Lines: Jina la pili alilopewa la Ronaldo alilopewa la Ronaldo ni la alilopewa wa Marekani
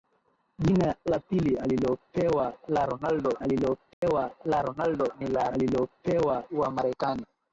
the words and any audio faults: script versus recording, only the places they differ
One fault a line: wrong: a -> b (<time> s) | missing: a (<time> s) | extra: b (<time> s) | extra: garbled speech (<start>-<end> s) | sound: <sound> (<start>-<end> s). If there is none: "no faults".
sound: dropout (3.9-4.0 s)